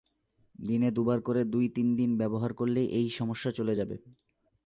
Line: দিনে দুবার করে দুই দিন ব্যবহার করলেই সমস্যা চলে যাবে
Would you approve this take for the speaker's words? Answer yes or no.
no